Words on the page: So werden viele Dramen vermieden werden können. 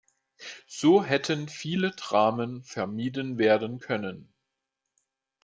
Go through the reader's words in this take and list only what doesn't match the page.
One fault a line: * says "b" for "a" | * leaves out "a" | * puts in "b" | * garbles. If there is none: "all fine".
* says "hätten" for "werden"